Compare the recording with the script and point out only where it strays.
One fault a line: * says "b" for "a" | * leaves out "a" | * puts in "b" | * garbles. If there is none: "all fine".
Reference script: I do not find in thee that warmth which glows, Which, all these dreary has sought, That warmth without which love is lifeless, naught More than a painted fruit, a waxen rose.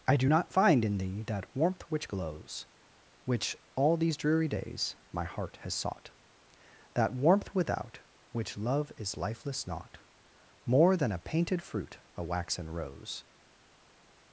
* puts in "days my heart"